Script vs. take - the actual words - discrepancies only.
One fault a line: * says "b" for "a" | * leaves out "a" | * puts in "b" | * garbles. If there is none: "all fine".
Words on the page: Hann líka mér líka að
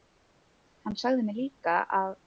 * says "sagði" for "líka"